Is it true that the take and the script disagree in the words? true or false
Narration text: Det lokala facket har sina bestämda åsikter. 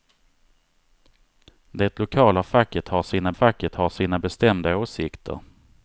true